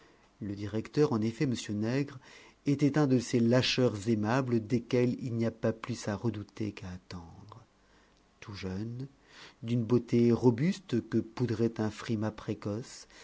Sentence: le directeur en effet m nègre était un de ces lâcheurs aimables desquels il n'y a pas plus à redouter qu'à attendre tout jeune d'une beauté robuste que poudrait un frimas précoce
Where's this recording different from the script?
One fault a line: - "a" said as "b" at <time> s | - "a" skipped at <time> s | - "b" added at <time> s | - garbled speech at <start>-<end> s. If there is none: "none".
none